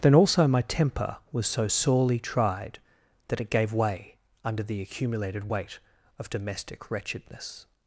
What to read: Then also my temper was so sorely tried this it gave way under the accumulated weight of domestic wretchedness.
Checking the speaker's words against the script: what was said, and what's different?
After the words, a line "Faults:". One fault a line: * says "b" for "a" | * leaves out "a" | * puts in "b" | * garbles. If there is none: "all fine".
Then also my temper was so sorely tried that it gave way under the accumulated weight of domestic wretchedness.
Faults:
* says "that" for "this"